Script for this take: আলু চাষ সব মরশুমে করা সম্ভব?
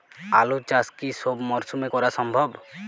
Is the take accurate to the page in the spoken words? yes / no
no